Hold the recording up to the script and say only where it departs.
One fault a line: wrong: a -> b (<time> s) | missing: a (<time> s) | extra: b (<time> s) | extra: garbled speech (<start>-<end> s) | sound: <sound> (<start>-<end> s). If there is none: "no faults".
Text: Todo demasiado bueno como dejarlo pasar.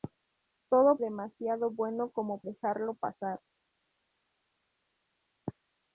no faults